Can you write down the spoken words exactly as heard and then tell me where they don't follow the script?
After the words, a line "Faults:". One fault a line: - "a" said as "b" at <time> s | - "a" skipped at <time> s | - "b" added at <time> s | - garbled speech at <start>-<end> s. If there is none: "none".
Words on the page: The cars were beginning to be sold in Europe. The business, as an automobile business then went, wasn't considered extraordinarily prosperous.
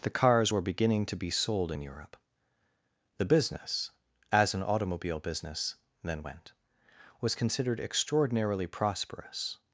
The cars were beginning to be sold in Europe. The business, as an automobile business then went, was considered extraordinarily prosperous.
Faults:
- "wasn't" said as "was" at 7.2 s